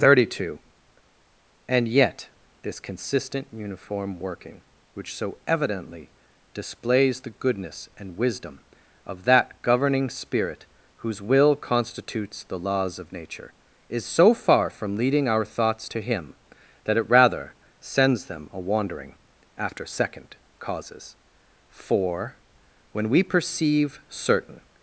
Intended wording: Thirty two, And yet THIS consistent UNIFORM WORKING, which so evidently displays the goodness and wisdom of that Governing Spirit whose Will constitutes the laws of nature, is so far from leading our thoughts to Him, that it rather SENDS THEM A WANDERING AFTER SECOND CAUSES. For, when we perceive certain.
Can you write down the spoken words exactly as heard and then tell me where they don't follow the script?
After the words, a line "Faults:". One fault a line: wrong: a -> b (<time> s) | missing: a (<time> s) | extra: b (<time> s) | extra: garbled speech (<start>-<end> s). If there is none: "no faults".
Thirty two, And yet THIS consistent UNIFORM WORKING, which so evidently displays the goodness and wisdom of that Governing Spirit whose Will constitutes the laws of nature, is so far from leading our thoughts to Him, that it rather SENDS THEM A WANDERING AFTER SECOND CAUSES. For, when we perceive certain.
Faults:
no faults